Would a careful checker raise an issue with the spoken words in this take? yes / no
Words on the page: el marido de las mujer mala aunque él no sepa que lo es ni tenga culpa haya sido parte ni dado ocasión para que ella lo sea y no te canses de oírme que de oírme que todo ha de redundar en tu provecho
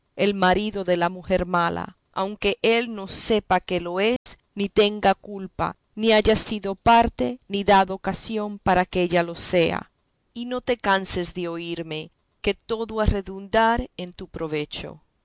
yes